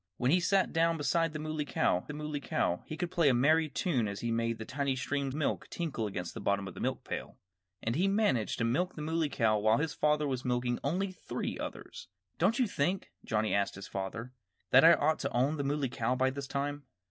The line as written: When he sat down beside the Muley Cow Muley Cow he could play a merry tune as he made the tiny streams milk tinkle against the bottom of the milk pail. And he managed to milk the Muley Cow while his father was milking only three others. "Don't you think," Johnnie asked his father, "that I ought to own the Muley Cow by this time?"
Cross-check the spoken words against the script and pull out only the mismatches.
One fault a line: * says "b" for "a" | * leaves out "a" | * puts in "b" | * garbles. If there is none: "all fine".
all fine